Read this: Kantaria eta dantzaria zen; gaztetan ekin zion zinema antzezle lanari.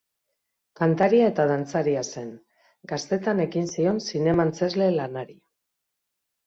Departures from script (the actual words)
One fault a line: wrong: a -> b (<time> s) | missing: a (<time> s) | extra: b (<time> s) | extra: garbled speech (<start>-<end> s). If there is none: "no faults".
no faults